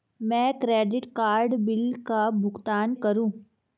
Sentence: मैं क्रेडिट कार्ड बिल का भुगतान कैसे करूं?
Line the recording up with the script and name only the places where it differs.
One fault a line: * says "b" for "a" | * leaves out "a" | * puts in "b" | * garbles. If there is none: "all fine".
* leaves out "कैसे"